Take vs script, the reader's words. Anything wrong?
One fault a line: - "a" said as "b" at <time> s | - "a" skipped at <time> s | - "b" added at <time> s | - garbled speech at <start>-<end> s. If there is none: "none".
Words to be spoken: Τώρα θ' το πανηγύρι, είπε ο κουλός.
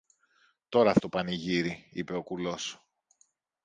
none